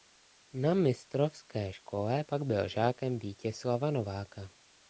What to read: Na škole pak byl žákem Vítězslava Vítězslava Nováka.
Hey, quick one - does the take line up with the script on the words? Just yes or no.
no